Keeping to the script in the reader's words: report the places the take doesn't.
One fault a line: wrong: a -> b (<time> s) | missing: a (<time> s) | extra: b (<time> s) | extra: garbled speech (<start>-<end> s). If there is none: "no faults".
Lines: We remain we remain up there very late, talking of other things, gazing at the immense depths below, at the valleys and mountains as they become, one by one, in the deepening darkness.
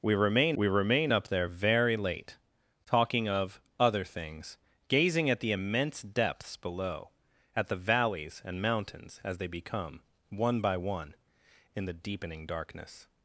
no faults